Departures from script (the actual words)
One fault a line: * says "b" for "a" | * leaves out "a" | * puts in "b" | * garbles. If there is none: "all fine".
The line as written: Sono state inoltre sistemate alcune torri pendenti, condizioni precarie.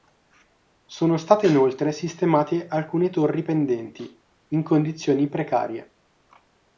* puts in "in"